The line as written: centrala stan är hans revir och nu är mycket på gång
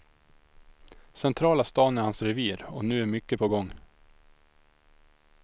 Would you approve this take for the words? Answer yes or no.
yes